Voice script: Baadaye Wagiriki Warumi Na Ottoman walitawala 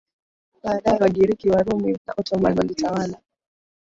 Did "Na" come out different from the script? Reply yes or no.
no